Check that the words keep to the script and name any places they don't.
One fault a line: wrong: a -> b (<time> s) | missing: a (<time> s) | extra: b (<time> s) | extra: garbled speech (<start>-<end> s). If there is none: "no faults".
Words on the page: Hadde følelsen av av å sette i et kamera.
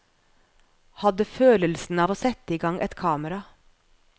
missing: av (2.1 s)
extra: gang (2.7 s)